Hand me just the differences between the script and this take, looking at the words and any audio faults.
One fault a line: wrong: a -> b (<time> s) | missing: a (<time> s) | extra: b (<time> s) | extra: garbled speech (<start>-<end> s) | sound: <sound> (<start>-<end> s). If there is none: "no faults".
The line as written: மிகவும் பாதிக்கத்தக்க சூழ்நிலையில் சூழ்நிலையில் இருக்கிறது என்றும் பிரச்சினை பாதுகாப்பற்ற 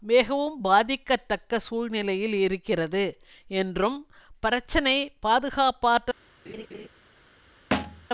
missing: சூழ்நிலையில் (2.3 s)
sound: laugh (6.5-6.9 s)
sound: thud (7.7-8.1 s)